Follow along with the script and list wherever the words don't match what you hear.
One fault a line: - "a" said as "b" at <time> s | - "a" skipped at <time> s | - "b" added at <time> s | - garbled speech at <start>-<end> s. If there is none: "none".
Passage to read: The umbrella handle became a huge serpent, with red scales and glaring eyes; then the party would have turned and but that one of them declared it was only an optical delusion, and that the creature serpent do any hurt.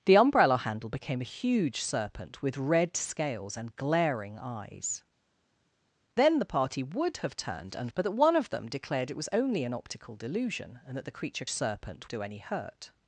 none